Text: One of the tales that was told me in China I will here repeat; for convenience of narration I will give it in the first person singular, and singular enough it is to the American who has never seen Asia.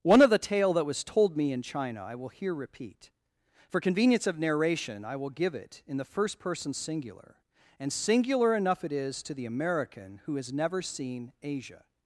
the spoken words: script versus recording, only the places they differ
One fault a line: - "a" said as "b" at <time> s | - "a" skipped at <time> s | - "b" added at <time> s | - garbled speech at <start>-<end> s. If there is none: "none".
- "tales" said as "tale" at 0.4 s